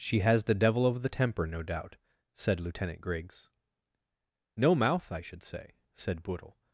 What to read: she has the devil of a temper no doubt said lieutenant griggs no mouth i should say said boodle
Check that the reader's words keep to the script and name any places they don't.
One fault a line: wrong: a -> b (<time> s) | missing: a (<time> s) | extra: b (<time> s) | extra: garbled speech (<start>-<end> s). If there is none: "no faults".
wrong: a -> the (1.0 s)